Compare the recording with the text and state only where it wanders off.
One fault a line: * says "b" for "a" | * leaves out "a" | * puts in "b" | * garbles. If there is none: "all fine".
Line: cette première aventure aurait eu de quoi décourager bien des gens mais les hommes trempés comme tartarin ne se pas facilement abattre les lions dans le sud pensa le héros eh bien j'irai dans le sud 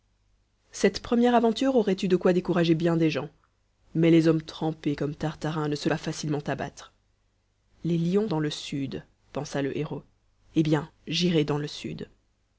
all fine